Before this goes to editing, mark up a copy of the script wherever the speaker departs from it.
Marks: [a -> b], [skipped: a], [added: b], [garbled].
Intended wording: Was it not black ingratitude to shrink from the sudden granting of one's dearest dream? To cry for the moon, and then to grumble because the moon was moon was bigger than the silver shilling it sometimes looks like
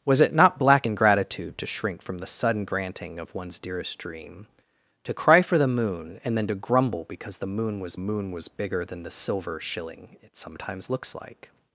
Was it not black ingratitude to shrink from the sudden granting of one's dearest dream? To cry for the moon, and then to grumble because the moon was moon was bigger than the silver shilling it sometimes looks like